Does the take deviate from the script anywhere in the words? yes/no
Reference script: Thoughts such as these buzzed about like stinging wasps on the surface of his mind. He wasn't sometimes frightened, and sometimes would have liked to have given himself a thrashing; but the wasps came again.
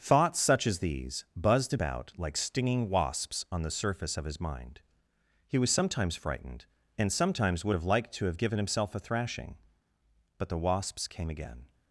yes